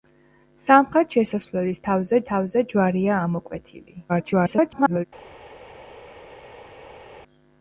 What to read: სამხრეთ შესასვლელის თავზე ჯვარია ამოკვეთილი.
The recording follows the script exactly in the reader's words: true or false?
false